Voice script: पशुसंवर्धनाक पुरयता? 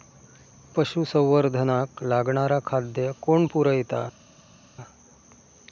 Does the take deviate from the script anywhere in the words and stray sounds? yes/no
yes